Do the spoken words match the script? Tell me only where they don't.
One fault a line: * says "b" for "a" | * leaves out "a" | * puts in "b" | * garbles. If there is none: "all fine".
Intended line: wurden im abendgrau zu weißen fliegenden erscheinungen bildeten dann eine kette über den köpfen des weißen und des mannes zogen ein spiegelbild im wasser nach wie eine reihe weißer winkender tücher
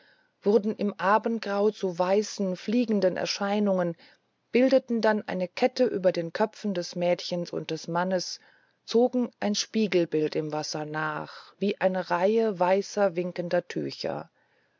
* says "mädchens" for "weißen"